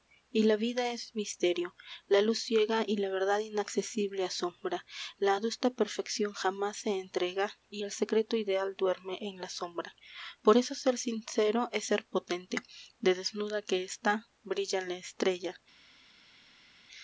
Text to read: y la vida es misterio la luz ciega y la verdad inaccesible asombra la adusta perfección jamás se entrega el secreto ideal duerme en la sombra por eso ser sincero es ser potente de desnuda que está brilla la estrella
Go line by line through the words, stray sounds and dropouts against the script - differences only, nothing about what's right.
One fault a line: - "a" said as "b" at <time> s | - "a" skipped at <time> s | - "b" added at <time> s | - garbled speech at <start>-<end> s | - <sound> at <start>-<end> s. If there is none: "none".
- "y" added at 7.7 s